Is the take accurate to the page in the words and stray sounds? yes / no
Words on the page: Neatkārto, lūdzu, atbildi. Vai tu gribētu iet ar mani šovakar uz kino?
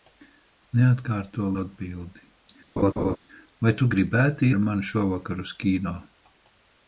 no